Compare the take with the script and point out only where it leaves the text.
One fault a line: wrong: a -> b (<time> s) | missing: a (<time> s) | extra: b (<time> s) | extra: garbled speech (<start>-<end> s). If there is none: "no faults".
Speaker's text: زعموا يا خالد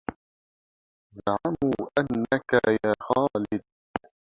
extra: أنك (2.0 s)